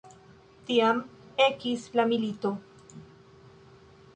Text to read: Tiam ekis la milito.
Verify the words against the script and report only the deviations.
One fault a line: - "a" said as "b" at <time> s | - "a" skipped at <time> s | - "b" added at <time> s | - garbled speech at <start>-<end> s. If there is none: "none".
none